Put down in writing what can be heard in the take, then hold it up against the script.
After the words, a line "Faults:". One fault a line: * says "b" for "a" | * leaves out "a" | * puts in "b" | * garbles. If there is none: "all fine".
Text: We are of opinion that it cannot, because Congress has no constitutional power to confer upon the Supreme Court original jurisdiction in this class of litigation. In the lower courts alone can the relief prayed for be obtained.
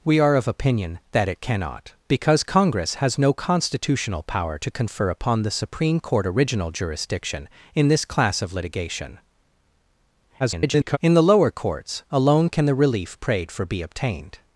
We are of opinion that it cannot, because Congress has no constitutional power to confer upon the Supreme Court original jurisdiction in this class of litigation. [garbled] In the lower courts alone can the relief prayed for be obtained.
Faults:
* garbles